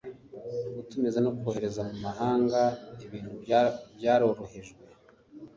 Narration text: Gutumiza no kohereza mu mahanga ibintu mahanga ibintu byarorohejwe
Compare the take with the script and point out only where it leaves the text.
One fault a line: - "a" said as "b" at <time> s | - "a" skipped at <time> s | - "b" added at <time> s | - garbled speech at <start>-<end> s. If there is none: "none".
- "mahanga ibintu" skipped at 3.3 s